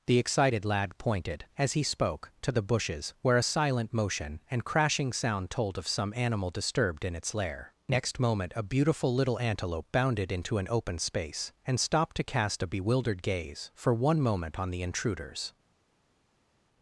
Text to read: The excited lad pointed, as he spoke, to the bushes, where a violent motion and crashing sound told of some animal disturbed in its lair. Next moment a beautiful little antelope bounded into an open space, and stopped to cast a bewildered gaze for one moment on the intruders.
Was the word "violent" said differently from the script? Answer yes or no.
yes